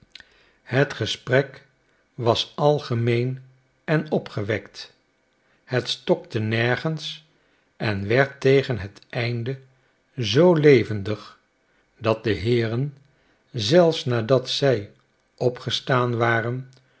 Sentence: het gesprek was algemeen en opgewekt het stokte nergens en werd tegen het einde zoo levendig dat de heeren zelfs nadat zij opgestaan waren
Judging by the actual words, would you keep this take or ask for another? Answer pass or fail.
pass